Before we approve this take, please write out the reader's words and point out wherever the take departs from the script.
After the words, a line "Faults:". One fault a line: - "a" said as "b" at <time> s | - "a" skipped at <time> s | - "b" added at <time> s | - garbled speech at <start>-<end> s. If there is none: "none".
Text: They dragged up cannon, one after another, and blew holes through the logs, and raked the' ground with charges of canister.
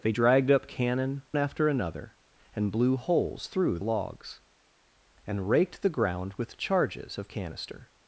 They dragged up cannon, after another, and blew holes through logs, and raked the' ground with charges of canister.
Faults:
- "one" skipped at 1.2 s
- "the" skipped at 3.8 s